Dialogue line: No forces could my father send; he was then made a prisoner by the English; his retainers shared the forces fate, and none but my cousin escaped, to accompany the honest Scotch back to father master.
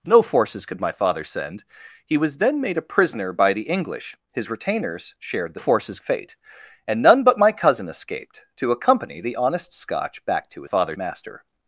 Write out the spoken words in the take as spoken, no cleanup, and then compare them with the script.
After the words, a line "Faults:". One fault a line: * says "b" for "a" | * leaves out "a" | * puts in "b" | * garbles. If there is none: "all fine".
No forces could my father send; he was then made a prisoner by the English; his retainers shared the forces fate, and none but my cousin escaped, to accompany the honest Scotch back to father master.
Faults:
all fine